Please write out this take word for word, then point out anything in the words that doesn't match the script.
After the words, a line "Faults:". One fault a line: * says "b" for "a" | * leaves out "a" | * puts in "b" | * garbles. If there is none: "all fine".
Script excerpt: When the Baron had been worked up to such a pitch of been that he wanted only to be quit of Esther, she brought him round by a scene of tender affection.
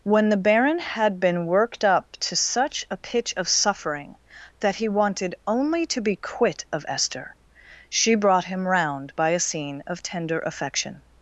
When the Baron had been worked up to such a pitch of suffering that he wanted only to be quit of Esther, she brought him round by a scene of tender affection.
Faults:
* says "suffering" for "been"